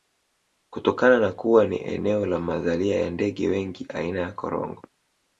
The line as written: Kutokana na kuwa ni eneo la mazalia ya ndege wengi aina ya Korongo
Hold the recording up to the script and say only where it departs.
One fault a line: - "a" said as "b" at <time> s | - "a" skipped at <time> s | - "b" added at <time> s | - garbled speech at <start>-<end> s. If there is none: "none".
none